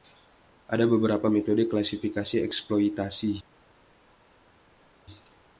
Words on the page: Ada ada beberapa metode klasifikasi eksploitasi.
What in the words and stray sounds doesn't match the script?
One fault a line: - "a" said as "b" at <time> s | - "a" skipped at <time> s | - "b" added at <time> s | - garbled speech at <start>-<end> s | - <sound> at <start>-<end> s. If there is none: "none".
- "ada" skipped at 0.9 s